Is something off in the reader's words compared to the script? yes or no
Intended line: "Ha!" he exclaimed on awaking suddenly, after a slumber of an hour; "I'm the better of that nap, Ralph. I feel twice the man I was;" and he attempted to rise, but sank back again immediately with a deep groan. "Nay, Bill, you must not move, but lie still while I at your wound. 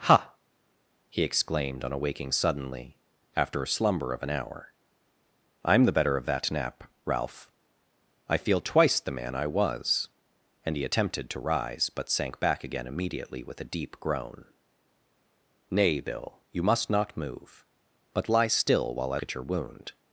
no